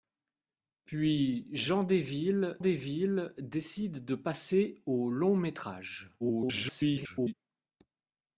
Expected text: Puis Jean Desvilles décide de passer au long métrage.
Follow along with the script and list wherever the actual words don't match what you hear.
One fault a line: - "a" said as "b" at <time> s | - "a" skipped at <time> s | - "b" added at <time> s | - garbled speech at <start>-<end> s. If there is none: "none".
- "Desvilles" added at 2.6 s
- garbled speech at 6.2-7.3 s